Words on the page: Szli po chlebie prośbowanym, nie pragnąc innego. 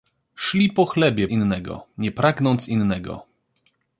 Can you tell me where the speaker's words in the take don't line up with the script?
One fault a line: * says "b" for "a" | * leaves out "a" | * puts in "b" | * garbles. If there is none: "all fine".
* says "innego" for "prośbowanym"